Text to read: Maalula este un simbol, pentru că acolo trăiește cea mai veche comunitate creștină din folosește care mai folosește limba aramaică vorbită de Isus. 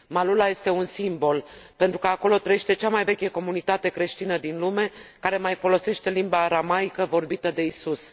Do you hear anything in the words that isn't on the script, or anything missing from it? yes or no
yes